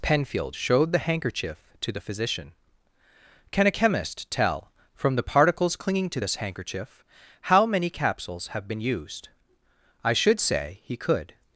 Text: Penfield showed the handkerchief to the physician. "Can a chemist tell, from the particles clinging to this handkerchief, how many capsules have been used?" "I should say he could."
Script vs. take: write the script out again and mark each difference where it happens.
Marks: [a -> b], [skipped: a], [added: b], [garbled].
Penfield showed the handkerchief to the physician. "Can a chemist tell, from the particles clinging to this handkerchief, how many capsules have been used?" "I should say he could."